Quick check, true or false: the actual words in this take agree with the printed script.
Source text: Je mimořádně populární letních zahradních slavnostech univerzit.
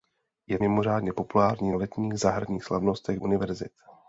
true